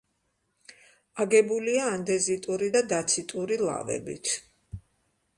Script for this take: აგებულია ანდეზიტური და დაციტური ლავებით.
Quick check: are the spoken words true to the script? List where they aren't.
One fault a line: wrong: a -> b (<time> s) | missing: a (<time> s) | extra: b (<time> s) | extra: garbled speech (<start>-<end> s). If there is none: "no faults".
no faults